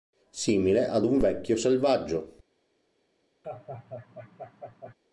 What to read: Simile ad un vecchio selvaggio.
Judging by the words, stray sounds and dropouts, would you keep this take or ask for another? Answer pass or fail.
fail